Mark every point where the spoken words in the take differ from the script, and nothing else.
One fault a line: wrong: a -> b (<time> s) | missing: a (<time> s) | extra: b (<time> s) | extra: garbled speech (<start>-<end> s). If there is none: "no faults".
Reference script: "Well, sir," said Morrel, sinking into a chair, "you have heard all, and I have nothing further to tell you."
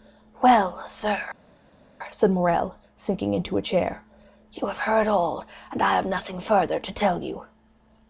no faults